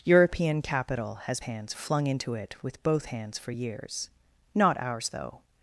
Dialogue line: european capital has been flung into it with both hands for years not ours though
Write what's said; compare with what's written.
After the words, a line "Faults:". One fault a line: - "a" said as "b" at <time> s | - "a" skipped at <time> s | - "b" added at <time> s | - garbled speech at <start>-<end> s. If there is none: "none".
european capital has hands flung into it with both hands for years not ours though
Faults:
- "been" said as "hands" at 1.4 s